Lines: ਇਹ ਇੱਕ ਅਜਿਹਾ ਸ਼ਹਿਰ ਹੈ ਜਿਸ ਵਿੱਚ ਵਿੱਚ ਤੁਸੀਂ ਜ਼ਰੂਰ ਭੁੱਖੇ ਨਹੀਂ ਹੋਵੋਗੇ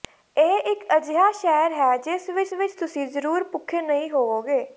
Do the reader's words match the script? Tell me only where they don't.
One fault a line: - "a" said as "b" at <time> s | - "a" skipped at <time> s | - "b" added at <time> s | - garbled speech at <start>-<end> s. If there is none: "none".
none